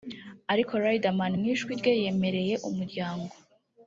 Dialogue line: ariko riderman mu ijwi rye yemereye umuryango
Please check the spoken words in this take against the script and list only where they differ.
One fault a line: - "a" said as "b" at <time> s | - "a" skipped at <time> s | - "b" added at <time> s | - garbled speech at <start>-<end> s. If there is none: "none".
none